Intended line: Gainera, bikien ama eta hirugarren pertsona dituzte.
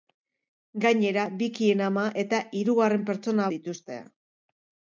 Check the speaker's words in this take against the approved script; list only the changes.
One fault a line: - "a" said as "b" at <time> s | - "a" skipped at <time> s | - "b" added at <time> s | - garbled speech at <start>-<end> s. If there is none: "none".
none